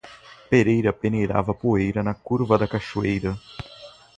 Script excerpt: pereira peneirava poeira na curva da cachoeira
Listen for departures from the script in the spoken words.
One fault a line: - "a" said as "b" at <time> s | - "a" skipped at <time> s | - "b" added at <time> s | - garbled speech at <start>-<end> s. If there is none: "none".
none